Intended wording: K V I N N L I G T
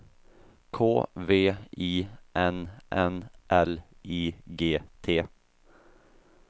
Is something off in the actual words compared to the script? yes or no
no